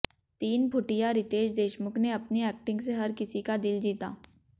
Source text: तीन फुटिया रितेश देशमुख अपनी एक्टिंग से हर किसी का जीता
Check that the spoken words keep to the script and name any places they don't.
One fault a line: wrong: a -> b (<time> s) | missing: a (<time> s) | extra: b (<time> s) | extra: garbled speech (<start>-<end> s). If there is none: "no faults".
extra: ने (2.0 s)
extra: दिल (3.6 s)